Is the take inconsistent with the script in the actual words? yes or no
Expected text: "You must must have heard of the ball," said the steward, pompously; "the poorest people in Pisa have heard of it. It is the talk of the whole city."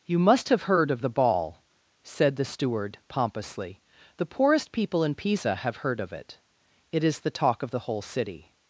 yes